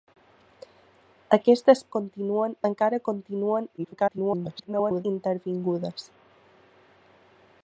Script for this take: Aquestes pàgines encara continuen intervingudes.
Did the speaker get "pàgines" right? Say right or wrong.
wrong